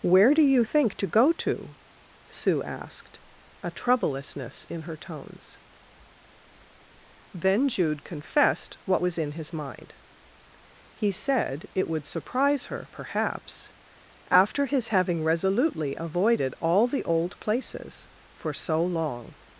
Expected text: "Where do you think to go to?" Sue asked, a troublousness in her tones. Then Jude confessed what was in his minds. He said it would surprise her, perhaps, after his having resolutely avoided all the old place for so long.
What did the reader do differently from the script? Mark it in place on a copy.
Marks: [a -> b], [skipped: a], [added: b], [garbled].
"Where do you think to go to?" Sue asked, a troublousness in her tones. Then Jude confessed what was in his [minds. -> mind] He said it would surprise her, perhaps, after his having resolutely avoided all the old [place -> places] for so long.